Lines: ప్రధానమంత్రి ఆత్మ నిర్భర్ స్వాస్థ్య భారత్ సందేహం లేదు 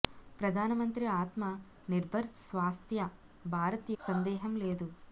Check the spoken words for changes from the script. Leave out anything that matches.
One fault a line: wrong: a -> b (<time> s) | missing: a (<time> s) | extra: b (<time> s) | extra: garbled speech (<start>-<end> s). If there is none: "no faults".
no faults